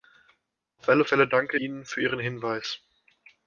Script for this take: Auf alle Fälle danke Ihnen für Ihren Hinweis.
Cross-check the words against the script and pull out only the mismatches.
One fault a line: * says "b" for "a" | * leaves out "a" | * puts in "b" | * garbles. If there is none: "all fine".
all fine